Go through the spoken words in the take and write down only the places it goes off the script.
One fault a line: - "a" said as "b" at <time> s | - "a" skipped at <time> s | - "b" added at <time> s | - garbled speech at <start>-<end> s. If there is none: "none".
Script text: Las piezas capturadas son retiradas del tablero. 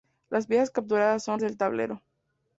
- "retiradas" skipped at 1.4 s